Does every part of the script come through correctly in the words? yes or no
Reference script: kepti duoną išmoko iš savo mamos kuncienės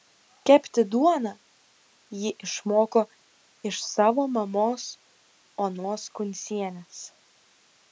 no